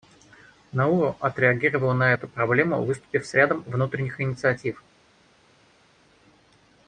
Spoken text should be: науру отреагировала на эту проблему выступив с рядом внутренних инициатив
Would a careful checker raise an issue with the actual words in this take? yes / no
no